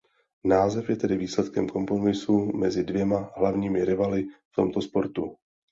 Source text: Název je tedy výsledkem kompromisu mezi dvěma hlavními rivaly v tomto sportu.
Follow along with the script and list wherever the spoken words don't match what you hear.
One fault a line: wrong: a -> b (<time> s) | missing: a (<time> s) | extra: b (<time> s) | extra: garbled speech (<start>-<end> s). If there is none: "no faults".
no faults